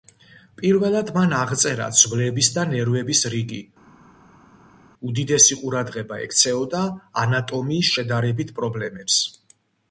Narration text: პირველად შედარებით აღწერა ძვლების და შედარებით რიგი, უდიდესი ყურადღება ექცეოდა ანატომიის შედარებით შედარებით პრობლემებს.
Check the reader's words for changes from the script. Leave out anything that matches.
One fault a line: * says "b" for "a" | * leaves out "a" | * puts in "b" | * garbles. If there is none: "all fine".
* says "მან" for "შედარებით"
* says "ნერვების" for "შედარებით"
* leaves out "შედარებით"